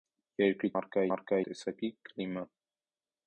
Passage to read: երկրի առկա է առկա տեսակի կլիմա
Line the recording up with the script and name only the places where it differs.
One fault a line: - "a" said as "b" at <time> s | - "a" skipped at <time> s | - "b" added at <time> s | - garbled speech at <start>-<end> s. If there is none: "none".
none